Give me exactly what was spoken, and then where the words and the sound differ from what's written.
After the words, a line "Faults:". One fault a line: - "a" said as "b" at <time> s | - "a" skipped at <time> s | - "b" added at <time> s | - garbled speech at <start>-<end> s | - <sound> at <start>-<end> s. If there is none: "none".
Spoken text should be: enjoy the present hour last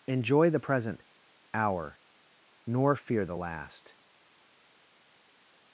enjoy the present hour nor fear the last
Faults:
- "nor fear the" added at 2.6 s